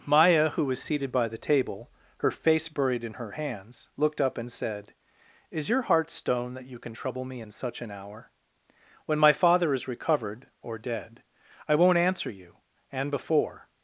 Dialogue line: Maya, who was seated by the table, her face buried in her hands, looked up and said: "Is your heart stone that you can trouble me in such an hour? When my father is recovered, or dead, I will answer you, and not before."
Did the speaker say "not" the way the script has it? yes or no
no